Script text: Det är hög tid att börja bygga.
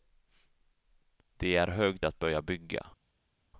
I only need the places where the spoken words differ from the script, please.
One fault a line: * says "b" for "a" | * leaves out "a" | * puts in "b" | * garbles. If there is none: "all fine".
* leaves out "tid"